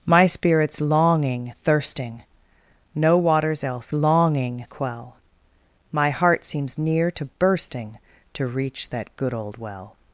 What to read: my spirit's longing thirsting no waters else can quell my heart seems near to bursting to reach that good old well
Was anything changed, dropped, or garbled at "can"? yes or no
yes